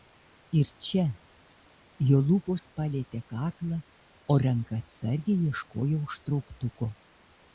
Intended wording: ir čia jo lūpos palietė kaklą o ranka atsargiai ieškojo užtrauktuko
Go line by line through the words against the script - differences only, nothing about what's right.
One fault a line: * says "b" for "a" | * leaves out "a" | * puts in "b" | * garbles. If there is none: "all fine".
all fine